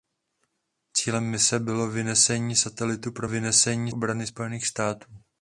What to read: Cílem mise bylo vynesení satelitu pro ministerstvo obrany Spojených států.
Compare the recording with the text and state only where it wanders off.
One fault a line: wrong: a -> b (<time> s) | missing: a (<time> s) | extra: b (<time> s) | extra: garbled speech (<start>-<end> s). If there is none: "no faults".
wrong: ministerstvo -> vynesení (3.2 s)